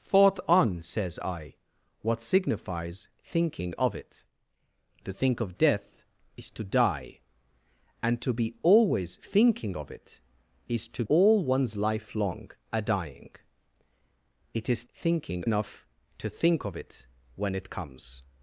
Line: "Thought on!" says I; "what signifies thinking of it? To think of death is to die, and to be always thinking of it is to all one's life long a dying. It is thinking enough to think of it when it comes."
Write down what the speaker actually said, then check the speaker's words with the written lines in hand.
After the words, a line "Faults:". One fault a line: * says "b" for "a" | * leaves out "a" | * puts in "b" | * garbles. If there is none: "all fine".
"Thought on!" says I; "what signifies thinking of it? To think of death is to die, and to be always thinking of it is to all one's life long a dying. It is thinking enough to think of it when it comes."
Faults:
all fine